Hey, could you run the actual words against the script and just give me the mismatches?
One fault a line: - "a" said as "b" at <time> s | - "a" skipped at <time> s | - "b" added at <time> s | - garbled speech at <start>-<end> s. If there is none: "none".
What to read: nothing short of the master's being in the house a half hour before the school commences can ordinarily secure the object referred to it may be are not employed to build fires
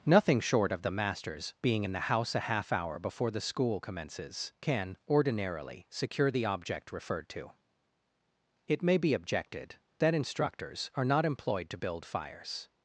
- "objected that instructors" added at 9.1 s